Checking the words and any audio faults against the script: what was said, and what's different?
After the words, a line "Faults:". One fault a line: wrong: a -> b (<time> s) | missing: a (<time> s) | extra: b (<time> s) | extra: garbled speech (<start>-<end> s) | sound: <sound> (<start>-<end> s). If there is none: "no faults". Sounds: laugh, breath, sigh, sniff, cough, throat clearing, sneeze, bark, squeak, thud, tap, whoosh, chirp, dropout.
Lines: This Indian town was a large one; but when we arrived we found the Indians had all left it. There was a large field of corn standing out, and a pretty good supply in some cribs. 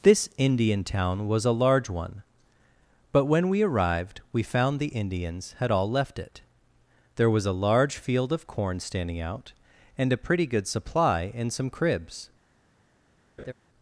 This Indian town was a large one; but when we arrived we found the Indians had all left it. There was a large field of corn standing out, and a pretty good supply in some cribs.
Faults:
sound: laugh (13.4-13.5 s)